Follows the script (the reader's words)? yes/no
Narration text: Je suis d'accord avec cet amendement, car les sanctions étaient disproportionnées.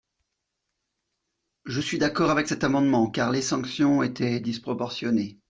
yes